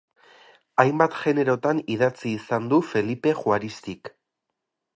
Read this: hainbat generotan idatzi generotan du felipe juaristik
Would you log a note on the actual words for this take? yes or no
yes